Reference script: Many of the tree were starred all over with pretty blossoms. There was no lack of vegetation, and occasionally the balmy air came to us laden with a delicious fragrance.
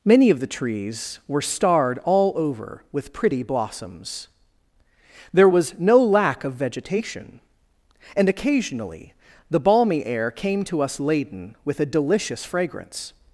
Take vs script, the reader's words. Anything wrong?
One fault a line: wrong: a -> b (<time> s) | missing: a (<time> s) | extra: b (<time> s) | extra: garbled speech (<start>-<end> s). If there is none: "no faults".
wrong: tree -> trees (0.5 s)